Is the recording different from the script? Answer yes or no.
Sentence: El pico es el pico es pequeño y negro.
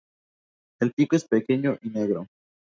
yes